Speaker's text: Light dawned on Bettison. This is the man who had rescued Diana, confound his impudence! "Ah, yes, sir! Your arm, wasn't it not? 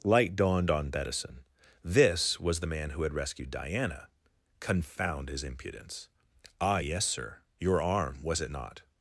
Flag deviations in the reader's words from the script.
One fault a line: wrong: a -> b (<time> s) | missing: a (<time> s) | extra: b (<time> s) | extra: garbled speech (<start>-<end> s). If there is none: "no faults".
wrong: is -> was (2.4 s)
wrong: wasn't -> was (8.2 s)